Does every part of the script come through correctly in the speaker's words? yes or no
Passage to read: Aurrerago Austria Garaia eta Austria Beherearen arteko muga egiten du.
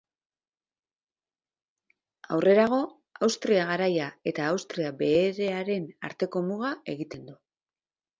yes